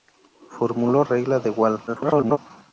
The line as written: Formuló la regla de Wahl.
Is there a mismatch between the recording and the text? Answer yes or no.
yes